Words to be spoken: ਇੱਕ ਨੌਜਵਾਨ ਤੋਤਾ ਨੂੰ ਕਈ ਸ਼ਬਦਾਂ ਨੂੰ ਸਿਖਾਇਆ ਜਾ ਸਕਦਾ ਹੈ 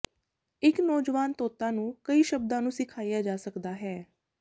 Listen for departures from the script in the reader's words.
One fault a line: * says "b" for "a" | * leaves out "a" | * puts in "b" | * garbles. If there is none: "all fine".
all fine